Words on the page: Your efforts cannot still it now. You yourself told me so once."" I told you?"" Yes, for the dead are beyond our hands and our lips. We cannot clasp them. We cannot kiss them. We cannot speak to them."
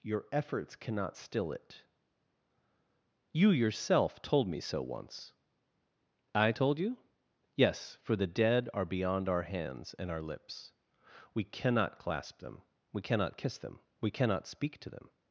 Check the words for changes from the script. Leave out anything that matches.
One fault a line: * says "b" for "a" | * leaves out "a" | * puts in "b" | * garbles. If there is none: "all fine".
* leaves out "now"